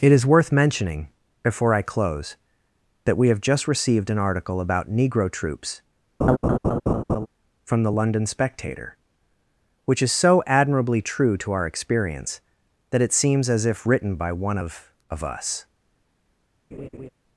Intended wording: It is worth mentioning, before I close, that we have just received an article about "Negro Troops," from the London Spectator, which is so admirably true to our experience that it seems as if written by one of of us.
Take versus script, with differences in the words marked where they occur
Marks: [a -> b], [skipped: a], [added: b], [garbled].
It is worth mentioning, before I close, that we have just received an article about "Negro Troops," from the London Spectator, which is so admirably true to our experience that it seems as if written by one of of us.